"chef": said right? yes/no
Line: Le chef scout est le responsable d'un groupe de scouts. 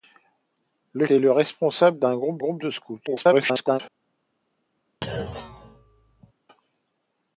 no